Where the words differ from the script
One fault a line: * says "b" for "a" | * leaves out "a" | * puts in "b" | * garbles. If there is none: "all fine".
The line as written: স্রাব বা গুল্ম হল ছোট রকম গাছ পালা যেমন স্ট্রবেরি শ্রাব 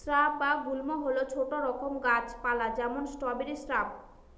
all fine